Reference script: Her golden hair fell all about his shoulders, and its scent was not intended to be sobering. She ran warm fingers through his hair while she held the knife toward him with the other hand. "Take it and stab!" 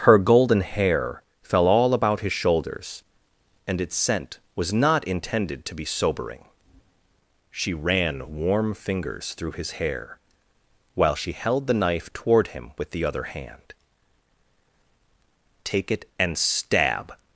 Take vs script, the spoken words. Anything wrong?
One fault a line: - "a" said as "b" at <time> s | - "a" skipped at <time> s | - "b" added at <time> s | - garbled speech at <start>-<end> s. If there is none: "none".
none